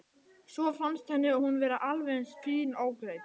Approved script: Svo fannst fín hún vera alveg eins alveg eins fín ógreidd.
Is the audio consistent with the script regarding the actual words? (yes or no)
no